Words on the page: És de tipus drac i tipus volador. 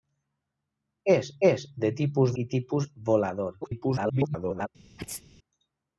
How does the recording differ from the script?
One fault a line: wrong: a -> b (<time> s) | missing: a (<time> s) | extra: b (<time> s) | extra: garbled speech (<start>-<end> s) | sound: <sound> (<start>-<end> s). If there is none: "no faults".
extra: és (1.5 s)
missing: drac (2.3 s)
extra: garbled speech (3.6-4.7 s)
sound: sneeze (5.0-5.2 s)